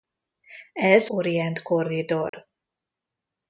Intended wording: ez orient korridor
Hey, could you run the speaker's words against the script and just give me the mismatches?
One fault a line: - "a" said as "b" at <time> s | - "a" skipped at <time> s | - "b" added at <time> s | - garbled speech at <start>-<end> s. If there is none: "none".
none